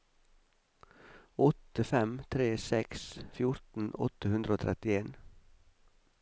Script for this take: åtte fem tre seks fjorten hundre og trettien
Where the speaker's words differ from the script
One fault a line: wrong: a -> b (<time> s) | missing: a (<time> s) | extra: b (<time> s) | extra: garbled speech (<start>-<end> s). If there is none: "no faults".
extra: åtte (4.1 s)